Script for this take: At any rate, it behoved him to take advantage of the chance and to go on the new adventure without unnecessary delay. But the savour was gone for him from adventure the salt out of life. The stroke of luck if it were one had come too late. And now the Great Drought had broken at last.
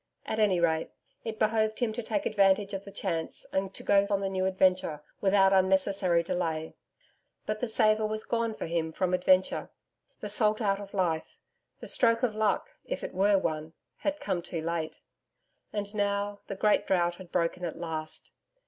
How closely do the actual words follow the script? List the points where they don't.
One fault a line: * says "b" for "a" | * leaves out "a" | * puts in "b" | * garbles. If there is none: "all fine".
all fine